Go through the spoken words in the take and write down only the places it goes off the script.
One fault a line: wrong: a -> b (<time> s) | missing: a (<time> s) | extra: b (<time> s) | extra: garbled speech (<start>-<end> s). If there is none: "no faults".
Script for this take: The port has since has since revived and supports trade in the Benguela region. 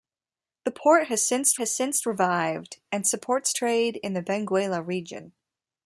no faults